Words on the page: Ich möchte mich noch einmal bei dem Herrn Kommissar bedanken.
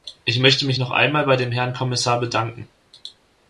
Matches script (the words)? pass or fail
pass